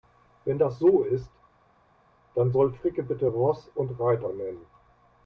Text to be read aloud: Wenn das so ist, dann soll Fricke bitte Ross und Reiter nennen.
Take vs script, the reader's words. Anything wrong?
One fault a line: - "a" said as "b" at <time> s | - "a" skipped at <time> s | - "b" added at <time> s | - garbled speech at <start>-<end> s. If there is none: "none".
none